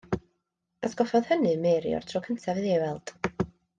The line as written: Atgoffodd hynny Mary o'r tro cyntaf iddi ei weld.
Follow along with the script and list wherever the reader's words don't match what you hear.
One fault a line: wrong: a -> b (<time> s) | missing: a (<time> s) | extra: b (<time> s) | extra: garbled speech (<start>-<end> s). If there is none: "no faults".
no faults